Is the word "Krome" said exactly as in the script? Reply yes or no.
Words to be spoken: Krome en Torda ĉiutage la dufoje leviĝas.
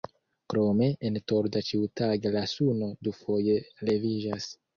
yes